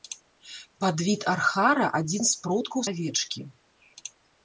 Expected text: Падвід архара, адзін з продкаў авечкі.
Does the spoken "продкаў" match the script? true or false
true